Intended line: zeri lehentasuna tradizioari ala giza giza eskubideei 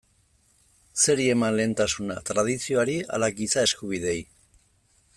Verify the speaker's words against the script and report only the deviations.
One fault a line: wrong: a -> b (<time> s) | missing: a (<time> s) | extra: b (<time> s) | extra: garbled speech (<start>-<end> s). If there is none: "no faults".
extra: eman (1.3 s)
missing: giza (3.7 s)